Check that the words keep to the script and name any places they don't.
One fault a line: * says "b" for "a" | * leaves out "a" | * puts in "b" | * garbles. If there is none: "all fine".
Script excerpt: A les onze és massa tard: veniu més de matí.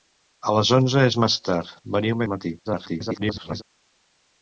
* leaves out "més"
* garbles